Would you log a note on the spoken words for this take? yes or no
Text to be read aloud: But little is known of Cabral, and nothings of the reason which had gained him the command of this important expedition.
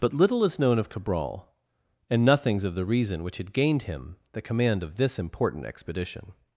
no